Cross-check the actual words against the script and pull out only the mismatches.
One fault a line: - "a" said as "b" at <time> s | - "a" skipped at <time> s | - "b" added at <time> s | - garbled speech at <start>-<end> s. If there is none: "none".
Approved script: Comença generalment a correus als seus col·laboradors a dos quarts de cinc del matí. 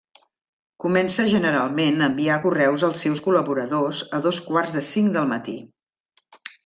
- "enviar" added at 2.1 s